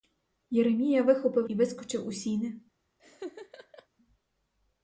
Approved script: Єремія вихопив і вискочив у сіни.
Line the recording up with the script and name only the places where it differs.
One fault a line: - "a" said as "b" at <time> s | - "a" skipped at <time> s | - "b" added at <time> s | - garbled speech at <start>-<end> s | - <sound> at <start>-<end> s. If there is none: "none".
- laugh at 3.0-3.9 s